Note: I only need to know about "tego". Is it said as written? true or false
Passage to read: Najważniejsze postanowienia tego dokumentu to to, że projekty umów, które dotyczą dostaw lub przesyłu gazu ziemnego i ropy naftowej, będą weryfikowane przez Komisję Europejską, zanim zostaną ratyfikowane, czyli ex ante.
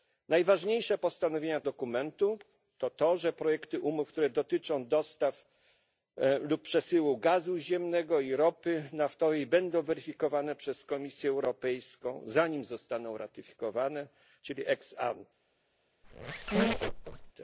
false